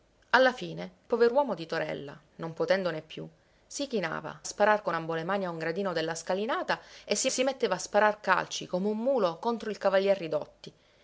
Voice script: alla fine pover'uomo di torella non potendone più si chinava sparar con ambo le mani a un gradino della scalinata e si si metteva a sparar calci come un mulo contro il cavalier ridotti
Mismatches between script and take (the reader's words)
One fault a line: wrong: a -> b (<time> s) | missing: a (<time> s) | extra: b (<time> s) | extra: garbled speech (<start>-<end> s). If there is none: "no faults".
no faults